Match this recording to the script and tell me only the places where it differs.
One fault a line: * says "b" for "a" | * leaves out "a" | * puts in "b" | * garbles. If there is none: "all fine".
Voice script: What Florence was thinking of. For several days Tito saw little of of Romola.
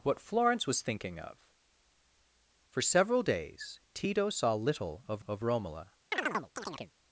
all fine